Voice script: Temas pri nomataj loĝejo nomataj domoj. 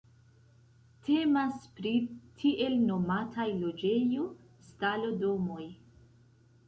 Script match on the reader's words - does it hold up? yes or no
no